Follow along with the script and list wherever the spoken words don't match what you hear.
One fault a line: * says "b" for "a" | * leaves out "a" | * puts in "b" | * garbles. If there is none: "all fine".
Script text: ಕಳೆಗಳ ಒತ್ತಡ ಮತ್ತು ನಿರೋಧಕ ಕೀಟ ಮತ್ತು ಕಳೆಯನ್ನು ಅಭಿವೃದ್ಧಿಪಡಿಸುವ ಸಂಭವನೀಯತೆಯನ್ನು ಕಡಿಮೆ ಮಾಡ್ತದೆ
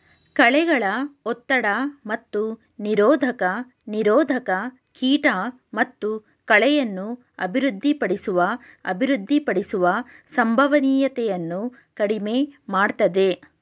* puts in "ನಿರೋಧಕ"
* puts in "ಅಭಿವೃದ್ಧಿಪಡಿಸುವ"